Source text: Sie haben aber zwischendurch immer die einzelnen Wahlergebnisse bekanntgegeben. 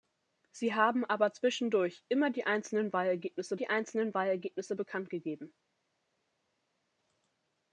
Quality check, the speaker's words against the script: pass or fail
fail